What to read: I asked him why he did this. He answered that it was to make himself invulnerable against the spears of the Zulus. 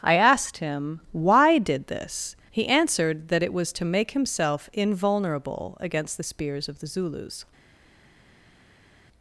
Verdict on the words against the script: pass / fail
fail